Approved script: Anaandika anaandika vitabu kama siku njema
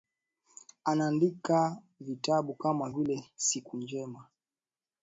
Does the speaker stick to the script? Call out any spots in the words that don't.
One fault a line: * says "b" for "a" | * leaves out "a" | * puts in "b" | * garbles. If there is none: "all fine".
* leaves out "anaandika"
* puts in "vile"